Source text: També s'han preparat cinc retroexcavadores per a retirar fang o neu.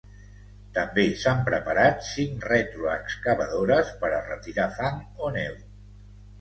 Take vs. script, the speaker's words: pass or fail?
pass